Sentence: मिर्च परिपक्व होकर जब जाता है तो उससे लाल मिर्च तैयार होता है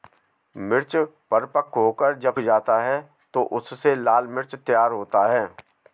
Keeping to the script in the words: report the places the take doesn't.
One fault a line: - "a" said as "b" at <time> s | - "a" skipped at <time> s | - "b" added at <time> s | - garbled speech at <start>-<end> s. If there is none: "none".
none